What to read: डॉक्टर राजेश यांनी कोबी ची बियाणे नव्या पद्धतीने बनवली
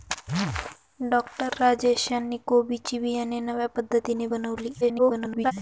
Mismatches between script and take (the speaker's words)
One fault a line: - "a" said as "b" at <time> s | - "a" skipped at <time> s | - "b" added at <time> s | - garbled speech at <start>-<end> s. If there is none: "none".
- garbled speech at 4.8-5.5 s